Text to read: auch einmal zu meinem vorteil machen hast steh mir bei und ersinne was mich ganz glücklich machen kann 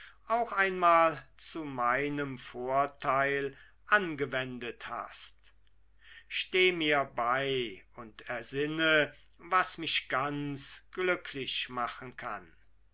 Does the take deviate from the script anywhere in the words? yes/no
yes